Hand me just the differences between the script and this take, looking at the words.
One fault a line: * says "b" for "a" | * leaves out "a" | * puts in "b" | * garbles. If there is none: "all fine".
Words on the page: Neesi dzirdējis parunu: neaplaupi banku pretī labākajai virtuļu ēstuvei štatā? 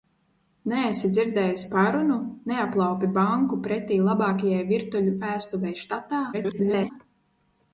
* garbles